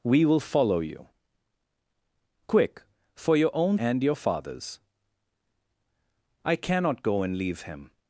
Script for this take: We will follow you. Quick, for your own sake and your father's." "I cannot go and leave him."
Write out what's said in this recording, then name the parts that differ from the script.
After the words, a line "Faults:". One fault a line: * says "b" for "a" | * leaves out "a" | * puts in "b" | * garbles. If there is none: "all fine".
We will follow you. Quick, for your own and your father's." "I cannot go and leave him."
Faults:
* leaves out "sake"